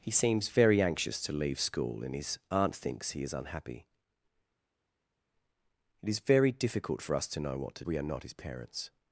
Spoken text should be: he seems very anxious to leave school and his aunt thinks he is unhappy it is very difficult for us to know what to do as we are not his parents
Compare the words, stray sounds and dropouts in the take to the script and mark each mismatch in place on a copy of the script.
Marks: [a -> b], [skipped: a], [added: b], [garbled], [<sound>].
he seems very anxious to leave school and his aunt thinks he is unhappy it is very difficult for us to know what to [skipped: do as] we are not his parents